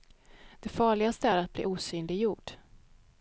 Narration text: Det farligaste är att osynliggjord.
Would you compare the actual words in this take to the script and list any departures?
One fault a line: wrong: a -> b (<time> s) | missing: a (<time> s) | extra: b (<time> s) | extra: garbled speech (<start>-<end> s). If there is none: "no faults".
extra: bli (1.5 s)